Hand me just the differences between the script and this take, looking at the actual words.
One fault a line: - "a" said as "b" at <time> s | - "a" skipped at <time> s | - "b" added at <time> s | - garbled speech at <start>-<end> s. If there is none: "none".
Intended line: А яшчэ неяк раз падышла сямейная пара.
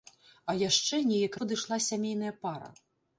- "раз" skipped at 1.4 s